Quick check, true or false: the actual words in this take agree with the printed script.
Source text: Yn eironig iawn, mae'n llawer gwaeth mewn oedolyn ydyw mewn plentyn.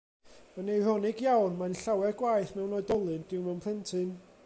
true